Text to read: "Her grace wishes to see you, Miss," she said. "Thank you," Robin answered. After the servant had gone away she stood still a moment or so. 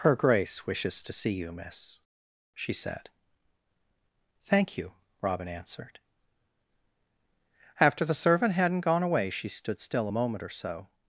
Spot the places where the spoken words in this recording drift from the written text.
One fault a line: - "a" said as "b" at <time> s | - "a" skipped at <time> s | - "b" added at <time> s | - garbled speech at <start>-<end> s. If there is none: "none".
- "had" said as "hadn't" at 8.5 s